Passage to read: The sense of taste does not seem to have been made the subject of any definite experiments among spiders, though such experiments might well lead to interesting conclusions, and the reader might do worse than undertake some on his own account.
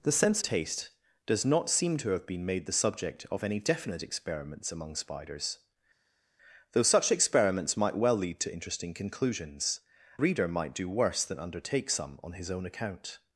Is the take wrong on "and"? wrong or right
wrong